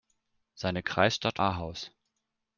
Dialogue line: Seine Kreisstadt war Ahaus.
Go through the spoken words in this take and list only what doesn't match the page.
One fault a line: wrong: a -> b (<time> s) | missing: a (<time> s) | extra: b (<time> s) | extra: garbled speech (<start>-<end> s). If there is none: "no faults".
missing: war (1.4 s)